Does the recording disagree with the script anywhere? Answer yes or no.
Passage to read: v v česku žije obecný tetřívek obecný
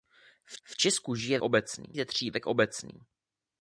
no